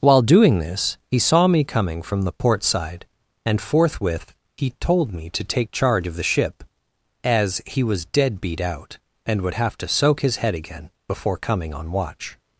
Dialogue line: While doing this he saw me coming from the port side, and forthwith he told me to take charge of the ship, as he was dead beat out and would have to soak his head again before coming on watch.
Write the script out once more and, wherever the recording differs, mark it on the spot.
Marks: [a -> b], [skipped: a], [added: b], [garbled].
While doing this he saw me coming from the port side, and forthwith he told me to take charge of the ship, as he was dead beat out and would have to soak his head again before coming on watch.